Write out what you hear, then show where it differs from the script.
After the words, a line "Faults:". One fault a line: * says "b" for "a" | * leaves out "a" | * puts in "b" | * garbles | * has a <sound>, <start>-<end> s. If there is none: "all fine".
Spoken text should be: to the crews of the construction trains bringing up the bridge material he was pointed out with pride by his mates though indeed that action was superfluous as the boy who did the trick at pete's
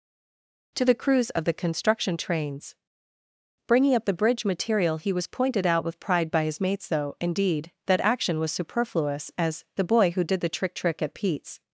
to the crews of the construction trains bringing up the bridge material he was pointed out with pride by his mates though indeed that action was superfluous as the boy who did the trick trick at pete's
Faults:
* puts in "trick"